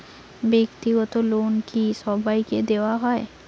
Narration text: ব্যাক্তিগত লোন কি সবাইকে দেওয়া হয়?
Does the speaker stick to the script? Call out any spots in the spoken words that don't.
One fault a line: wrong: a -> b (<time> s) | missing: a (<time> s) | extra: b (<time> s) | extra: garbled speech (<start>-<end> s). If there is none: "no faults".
no faults